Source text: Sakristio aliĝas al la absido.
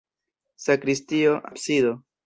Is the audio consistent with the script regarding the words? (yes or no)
no